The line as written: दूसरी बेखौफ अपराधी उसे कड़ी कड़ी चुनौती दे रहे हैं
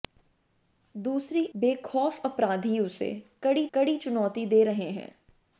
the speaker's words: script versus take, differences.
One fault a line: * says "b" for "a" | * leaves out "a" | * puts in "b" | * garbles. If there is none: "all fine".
all fine